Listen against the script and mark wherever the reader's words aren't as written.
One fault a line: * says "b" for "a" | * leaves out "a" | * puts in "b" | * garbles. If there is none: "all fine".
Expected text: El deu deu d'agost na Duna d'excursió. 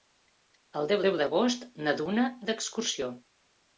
all fine